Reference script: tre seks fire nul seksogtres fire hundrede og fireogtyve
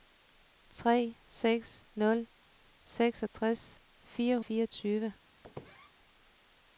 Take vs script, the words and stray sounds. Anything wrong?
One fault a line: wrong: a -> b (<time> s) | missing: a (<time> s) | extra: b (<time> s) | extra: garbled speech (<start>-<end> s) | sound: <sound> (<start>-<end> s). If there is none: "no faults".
missing: fire (1.8 s)
missing: hundrede og (4.4 s)
sound: squeak (5.4-5.9 s)